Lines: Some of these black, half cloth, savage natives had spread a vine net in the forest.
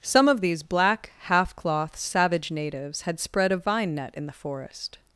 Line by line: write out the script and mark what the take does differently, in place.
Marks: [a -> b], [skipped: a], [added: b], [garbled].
Some of these black, half cloth, savage natives had spread a vine net in the forest.